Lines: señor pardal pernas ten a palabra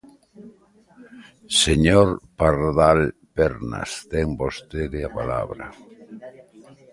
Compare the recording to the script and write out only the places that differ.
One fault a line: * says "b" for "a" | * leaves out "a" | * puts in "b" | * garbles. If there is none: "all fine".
* puts in "vostede"